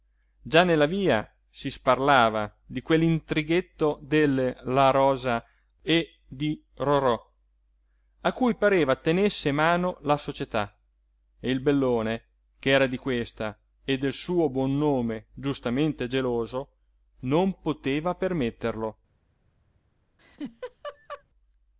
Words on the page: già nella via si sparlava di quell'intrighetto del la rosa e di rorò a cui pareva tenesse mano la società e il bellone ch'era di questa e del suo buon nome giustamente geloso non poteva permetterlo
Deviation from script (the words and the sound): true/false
true